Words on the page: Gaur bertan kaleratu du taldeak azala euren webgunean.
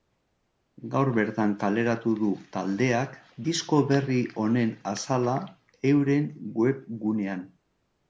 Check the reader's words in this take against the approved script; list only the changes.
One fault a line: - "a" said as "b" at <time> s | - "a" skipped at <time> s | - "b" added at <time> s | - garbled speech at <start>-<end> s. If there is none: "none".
- "disko berri honen" added at 3.5 s